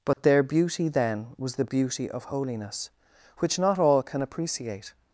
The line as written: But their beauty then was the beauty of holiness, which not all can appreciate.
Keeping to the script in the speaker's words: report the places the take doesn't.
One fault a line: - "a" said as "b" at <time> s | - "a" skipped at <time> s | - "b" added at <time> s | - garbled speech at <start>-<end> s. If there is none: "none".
none